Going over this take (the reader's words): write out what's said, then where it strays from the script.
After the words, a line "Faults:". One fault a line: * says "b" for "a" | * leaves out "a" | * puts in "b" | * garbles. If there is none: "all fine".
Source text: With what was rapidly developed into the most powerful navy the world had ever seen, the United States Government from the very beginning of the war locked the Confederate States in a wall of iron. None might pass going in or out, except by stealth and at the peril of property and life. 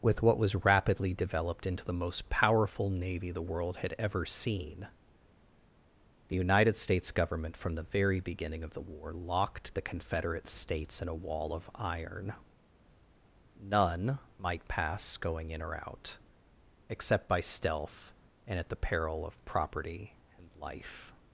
With what was rapidly developed into the most powerful navy the world had ever seen, the United States Government from the very beginning of the war locked the Confederate States in a wall of iron. None might pass going in or out, except by stealth and at the peril of property and life.
Faults:
all fine